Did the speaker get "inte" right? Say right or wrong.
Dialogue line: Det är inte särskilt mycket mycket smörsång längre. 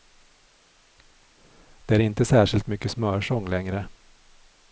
right